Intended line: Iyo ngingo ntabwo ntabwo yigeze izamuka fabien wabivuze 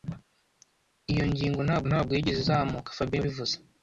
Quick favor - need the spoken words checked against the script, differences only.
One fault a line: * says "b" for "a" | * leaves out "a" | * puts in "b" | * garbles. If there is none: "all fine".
all fine